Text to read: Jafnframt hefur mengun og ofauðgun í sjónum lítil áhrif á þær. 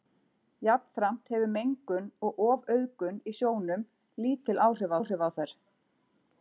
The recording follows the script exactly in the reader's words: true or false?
false